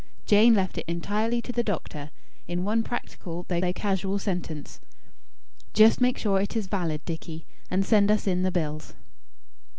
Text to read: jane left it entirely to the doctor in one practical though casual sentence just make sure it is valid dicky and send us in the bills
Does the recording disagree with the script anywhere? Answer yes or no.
yes